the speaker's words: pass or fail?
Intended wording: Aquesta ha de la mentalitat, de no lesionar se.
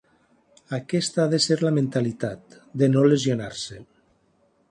fail